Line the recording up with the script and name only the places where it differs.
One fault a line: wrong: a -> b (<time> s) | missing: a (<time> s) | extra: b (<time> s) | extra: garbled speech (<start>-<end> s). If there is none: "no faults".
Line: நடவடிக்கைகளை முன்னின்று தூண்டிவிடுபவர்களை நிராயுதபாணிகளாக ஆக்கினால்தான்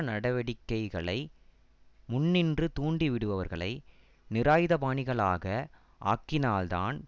no faults